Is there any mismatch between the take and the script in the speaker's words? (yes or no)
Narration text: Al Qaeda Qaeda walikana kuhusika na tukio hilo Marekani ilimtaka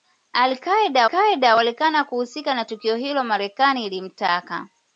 no